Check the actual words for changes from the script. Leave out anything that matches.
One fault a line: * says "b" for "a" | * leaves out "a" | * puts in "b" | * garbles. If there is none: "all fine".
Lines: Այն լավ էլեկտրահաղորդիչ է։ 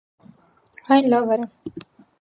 * leaves out "էլեկտրահաղորդիչ"